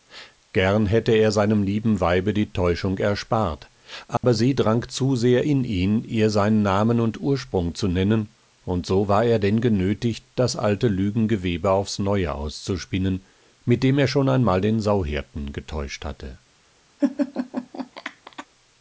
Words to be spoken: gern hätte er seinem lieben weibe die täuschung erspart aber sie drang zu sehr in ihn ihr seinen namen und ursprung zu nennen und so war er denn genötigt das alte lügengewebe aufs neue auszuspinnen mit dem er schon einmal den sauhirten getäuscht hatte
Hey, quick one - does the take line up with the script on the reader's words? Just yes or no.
yes